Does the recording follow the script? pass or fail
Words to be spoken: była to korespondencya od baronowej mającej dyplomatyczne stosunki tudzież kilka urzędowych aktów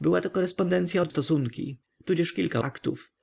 fail